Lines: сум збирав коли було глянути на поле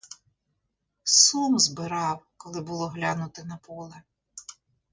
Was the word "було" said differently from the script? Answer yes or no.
no